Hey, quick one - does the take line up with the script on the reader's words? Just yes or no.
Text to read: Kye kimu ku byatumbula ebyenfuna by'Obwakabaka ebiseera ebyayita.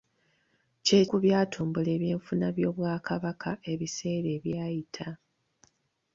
no